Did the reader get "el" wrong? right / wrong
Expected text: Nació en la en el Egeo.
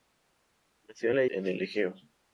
right